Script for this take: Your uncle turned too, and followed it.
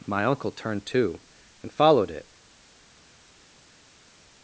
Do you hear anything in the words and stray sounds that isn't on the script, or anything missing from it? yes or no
yes